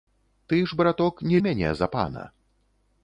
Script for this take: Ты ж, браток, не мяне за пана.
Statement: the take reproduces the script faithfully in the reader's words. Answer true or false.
true